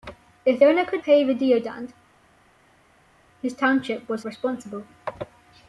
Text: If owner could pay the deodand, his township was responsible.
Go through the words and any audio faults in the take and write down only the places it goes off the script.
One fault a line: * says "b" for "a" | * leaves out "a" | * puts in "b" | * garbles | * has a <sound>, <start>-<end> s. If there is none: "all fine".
all fine